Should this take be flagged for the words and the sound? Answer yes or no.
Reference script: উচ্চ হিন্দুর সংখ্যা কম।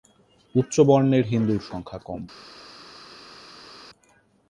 yes